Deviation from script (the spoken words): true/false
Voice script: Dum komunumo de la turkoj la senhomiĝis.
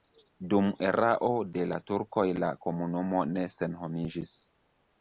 true